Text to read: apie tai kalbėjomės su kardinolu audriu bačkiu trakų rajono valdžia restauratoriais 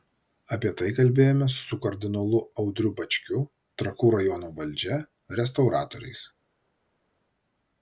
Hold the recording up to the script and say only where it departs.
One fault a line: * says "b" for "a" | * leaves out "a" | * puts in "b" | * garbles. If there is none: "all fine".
all fine